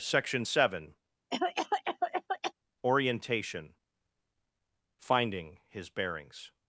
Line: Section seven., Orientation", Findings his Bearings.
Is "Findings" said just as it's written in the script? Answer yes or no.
no